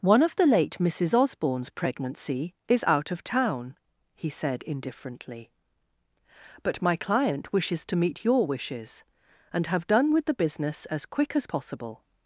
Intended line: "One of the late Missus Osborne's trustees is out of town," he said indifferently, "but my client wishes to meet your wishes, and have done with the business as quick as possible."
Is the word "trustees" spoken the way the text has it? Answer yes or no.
no